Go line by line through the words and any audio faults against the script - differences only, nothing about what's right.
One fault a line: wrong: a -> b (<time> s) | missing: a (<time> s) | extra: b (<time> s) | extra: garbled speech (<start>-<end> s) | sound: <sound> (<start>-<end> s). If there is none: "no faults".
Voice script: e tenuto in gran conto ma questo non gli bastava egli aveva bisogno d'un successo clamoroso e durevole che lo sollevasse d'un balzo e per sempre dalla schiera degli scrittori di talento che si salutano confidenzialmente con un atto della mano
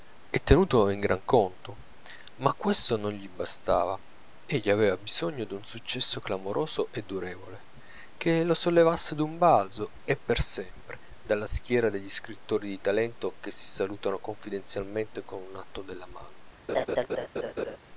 sound: laugh (16.7-17.8 s)